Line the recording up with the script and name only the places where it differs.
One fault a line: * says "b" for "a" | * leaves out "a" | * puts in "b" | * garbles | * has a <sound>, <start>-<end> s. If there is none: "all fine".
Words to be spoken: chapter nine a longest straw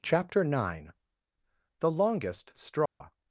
* says "the" for "a"
* has a dropout, 2.9-3.0 s